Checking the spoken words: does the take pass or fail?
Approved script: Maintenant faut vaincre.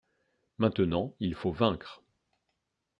fail